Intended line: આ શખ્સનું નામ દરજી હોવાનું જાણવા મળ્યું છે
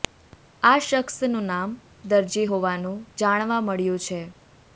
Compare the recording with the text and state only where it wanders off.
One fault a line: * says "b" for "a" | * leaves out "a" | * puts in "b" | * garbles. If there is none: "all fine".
all fine